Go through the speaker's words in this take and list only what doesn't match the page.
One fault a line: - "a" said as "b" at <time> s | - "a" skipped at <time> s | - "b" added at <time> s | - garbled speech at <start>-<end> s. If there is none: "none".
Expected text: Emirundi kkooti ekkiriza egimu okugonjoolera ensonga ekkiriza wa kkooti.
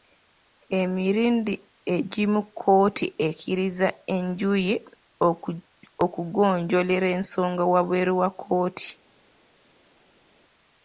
- "egimu" added at 1.9 s
- "egimu" said as "enjuyi" at 4.2 s
- "ekkiriza" said as "wabweru" at 7.7 s